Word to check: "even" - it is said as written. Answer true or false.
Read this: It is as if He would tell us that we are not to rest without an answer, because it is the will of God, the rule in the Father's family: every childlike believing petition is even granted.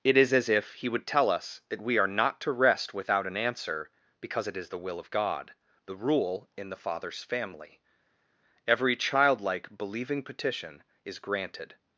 false